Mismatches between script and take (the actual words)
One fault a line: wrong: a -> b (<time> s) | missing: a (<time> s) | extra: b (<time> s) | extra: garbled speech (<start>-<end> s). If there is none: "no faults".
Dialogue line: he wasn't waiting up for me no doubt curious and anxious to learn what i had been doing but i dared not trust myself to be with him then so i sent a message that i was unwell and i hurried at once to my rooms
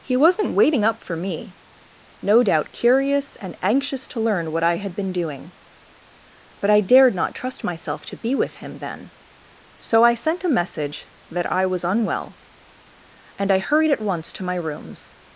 no faults